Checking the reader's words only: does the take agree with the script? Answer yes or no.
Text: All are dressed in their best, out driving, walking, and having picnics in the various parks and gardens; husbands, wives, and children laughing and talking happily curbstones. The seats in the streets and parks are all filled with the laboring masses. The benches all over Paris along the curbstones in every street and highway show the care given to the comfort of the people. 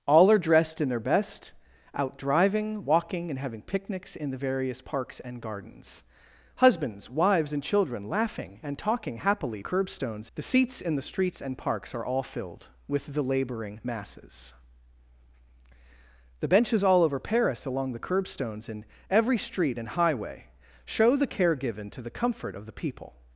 yes